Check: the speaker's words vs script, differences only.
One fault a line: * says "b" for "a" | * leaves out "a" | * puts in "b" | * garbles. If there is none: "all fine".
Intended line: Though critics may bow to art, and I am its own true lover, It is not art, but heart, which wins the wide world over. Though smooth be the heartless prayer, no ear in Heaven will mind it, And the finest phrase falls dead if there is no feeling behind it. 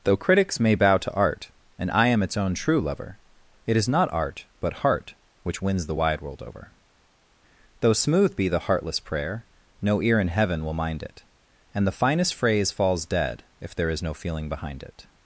all fine